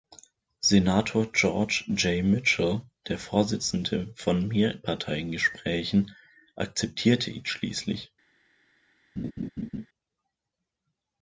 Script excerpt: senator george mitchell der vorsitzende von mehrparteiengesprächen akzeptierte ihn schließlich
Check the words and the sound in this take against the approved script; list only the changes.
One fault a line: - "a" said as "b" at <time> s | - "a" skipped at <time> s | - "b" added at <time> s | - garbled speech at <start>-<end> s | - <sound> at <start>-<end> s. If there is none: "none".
- "j" added at 1.9 s
- laugh at 9.2-9.9 s